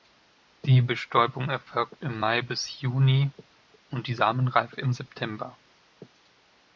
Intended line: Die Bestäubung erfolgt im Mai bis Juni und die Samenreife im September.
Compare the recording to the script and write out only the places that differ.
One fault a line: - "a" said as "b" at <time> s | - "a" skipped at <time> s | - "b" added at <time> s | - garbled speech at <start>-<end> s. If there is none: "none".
none